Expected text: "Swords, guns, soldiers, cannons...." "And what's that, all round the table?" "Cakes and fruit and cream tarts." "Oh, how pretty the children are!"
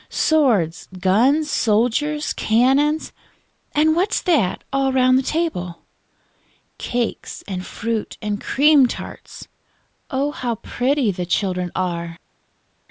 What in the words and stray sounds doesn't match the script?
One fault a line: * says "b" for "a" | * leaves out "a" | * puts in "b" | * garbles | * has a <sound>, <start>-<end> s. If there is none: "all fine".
all fine